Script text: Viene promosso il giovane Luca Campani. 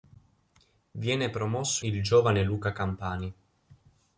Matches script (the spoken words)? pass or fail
pass